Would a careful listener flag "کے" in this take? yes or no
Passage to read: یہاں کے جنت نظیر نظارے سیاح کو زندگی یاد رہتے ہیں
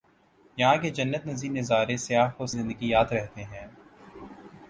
no